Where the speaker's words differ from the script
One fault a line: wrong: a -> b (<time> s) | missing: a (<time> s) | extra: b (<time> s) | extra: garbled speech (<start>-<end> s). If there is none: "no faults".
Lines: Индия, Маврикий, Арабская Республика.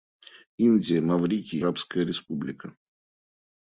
no faults